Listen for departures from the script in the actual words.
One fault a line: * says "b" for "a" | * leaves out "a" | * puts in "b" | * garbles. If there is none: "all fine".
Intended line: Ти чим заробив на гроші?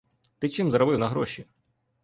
all fine